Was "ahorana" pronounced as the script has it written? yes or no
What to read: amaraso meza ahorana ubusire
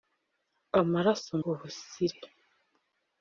no